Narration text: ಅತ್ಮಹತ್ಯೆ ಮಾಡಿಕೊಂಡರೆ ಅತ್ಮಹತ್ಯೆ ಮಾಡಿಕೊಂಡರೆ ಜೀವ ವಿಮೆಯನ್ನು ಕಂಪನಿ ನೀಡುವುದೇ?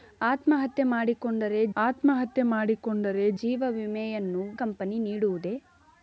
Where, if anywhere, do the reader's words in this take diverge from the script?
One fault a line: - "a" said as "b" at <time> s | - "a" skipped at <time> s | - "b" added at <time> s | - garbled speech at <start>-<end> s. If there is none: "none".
none